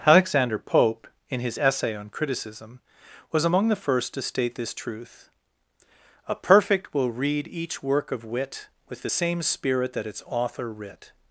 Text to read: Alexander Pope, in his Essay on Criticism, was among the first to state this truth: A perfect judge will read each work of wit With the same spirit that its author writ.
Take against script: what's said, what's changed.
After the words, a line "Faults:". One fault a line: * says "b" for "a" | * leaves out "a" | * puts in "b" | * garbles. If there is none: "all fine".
Alexander Pope, in his Essay on Criticism, was among the first to state this truth: A perfect will read each work of wit With the same spirit that its author writ.
Faults:
* leaves out "judge"